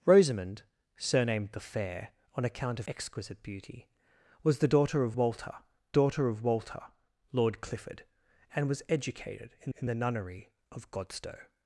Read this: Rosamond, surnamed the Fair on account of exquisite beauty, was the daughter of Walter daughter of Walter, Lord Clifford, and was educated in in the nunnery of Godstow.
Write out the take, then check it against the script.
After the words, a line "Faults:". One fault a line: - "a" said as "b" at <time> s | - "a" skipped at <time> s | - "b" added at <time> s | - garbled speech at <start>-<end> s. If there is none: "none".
Rosamond, surnamed the Fair on account of exquisite beauty, was the daughter of Walter daughter of Walter, Lord Clifford, and was educated in in the nunnery of Godstow.
Faults:
none